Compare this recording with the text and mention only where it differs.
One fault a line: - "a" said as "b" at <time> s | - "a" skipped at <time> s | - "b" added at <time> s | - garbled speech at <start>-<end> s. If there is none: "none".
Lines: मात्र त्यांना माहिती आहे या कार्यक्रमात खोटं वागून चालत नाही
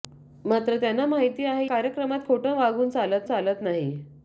- "या" skipped at 1.7 s
- "चालत" added at 3.2 s